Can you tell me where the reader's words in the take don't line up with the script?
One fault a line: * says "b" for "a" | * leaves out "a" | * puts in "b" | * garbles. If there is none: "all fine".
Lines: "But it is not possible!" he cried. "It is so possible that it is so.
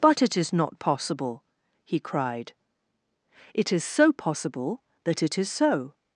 all fine